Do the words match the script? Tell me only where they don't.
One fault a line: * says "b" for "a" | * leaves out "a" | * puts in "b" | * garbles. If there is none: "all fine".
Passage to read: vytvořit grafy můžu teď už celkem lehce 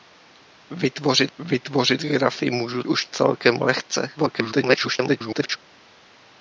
* puts in "vytvořit"
* leaves out "teď"
* garbles